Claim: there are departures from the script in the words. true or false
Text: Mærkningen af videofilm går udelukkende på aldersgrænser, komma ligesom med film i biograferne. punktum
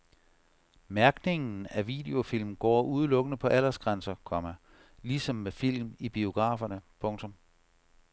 false